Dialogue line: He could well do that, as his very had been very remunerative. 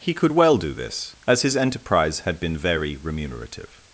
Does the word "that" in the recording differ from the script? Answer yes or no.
yes